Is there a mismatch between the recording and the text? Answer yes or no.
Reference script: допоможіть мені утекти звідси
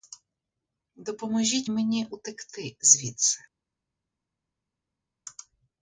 no